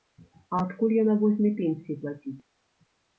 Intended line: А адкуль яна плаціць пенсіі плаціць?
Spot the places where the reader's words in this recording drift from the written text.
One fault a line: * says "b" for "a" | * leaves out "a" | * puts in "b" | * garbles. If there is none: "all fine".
* says "возьме" for "плаціць"